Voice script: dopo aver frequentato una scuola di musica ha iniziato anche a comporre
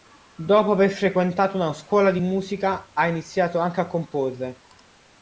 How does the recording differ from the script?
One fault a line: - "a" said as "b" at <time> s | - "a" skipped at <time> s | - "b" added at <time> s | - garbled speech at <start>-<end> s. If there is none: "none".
none